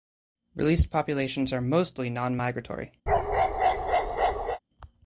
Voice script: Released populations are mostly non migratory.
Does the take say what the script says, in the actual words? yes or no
yes